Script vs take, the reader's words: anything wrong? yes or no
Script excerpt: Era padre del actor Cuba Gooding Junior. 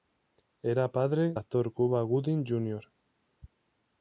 yes